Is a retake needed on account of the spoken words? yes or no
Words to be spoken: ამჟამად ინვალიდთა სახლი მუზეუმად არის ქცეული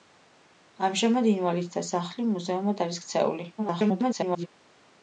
yes